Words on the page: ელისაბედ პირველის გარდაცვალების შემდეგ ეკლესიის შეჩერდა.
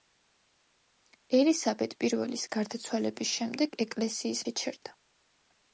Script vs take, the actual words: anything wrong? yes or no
no